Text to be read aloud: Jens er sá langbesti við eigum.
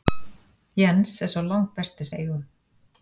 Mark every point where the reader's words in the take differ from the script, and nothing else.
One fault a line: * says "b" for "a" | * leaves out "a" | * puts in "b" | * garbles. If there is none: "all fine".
all fine